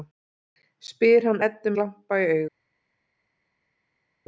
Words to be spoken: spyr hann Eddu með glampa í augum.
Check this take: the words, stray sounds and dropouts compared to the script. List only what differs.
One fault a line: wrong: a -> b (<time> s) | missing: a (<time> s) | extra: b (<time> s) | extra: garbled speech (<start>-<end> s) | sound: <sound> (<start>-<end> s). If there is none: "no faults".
missing: með (1.7 s)